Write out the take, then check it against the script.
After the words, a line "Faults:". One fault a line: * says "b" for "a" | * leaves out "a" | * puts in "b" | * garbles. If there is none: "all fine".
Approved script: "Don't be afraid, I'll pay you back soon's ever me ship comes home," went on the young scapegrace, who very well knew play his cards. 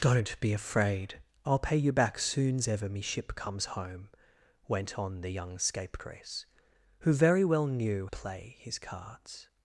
"Don't be afraid, I'll pay you back soon's ever me ship comes home," went on the young scapegrace, who very well knew play his cards.
Faults:
all fine